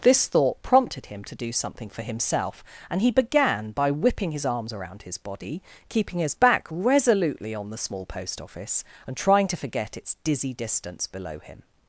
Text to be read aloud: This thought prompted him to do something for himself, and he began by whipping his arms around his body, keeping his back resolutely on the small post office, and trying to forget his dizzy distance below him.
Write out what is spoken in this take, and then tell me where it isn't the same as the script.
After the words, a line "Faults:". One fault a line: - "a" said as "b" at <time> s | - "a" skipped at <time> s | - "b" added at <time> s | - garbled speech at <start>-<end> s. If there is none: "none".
This thought prompted him to do something for himself, and he began by whipping his arms around his body, keeping his back resolutely on the small post office, and trying to forget its dizzy distance below him.
Faults:
- "his" said as "its" at 10.0 s